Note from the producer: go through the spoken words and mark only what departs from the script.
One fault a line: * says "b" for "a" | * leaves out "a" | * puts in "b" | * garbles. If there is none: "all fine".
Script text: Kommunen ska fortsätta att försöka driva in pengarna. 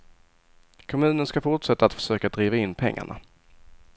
all fine